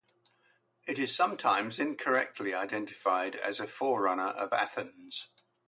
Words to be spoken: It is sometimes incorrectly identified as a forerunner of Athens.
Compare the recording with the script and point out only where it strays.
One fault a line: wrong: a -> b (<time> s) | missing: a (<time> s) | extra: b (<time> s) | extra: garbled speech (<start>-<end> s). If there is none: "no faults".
no faults